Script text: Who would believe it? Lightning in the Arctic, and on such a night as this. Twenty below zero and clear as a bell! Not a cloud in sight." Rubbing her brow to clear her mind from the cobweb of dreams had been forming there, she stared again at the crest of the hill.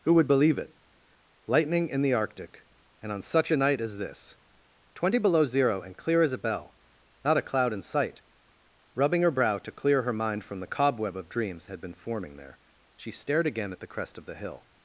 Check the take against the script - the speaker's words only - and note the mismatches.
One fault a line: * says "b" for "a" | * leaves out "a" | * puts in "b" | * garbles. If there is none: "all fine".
all fine